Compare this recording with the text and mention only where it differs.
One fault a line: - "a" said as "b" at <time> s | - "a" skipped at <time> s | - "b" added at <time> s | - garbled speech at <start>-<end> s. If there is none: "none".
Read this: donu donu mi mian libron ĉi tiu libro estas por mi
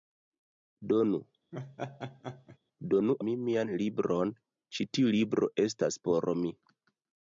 none